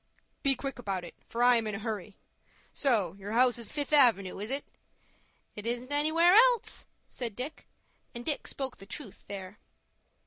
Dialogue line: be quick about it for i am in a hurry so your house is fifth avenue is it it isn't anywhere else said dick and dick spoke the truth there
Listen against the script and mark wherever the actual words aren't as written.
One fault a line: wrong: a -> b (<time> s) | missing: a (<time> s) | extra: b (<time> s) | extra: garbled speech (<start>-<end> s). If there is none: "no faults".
no faults